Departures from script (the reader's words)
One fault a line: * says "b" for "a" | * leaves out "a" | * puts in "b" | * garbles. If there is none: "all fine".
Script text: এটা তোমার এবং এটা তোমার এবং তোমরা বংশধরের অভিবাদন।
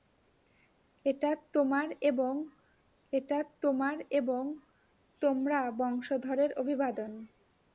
all fine